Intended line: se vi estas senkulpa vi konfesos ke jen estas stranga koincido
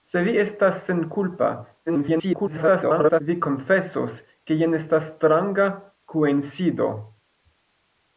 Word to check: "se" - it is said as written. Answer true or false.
true